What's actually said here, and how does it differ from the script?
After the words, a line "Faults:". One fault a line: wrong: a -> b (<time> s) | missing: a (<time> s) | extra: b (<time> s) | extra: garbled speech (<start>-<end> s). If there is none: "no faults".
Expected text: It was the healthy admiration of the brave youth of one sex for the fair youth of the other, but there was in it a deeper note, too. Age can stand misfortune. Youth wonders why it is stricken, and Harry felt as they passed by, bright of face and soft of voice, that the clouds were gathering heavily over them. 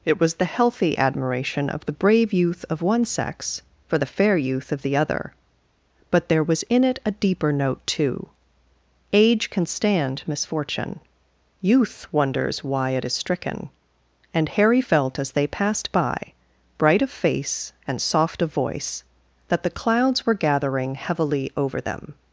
It was the healthy admiration of the brave youth of one sex for the fair youth of the other, but there was in it a deeper note, too. Age can stand misfortune. Youth wonders why it is stricken, and Harry felt as they passed by, bright of face and soft of voice, that the clouds were gathering heavily over them.
Faults:
no faults